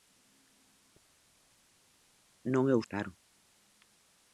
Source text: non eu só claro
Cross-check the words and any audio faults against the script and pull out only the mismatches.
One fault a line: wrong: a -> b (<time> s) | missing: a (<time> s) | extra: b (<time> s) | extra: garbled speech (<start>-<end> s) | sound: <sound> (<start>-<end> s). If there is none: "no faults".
missing: só (2.8 s)